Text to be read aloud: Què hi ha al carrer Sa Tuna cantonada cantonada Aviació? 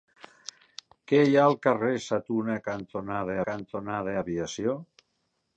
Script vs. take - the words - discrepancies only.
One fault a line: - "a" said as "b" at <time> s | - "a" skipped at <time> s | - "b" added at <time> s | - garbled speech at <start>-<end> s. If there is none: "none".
none